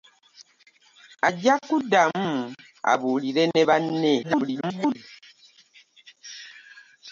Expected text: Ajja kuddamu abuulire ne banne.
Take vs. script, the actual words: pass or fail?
fail